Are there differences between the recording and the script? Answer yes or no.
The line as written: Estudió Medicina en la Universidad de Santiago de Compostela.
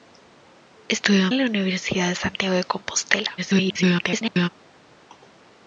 yes